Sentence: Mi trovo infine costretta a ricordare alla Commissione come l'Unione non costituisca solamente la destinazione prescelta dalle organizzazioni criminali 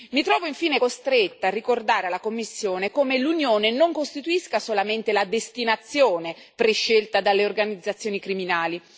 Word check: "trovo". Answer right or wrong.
right